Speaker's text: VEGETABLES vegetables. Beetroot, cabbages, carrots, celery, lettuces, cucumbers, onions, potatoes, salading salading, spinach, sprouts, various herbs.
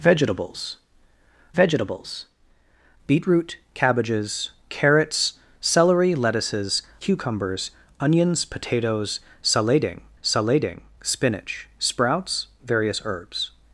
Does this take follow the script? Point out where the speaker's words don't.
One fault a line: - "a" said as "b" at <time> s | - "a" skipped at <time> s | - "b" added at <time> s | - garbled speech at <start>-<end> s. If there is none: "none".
none